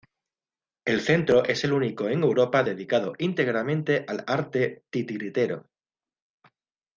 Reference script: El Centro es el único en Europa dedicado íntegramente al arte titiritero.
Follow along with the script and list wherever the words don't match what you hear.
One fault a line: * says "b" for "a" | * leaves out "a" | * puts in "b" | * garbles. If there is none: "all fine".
all fine